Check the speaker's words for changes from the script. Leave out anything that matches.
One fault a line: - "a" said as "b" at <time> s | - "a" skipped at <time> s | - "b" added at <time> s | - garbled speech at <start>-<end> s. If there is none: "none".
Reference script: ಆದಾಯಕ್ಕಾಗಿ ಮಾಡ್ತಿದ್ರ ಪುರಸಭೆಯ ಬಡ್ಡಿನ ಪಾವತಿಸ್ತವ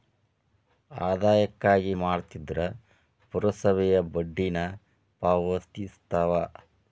none